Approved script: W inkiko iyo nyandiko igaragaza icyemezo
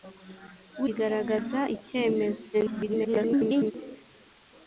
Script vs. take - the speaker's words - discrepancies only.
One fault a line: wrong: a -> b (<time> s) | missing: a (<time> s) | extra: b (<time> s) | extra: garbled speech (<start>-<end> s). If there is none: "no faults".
missing: inkiko iyo nyandiko (0.8 s)
extra: garbled speech (2.5-3.7 s)